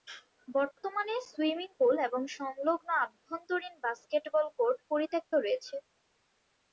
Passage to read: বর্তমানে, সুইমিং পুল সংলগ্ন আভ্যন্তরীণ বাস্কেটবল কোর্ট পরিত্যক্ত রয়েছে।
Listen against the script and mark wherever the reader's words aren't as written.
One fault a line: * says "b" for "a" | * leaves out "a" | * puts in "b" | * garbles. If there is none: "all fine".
* puts in "এবং"